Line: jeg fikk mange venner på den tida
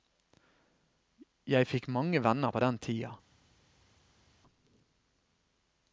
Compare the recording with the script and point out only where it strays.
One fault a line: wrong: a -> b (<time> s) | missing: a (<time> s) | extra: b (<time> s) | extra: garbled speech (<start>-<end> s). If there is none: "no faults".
no faults